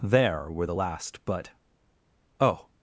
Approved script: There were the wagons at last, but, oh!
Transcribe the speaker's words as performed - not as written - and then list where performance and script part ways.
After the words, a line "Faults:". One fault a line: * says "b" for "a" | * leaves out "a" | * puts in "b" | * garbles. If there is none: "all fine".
There were the last, but, oh!
Faults:
* leaves out "wagons at"